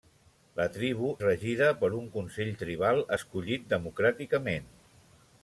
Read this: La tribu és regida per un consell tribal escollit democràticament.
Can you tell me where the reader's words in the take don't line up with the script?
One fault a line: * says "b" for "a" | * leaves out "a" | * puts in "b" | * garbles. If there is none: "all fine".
* leaves out "és"